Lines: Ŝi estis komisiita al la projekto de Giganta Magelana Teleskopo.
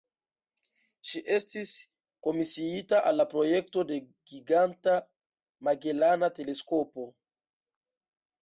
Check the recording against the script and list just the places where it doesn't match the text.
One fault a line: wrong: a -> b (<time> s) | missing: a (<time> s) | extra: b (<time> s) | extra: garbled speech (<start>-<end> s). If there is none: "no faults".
no faults